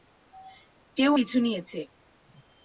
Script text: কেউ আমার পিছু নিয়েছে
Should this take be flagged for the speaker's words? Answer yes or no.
yes